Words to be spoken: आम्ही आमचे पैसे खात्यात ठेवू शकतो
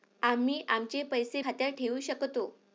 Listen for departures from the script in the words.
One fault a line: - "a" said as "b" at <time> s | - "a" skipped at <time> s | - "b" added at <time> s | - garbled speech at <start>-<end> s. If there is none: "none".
none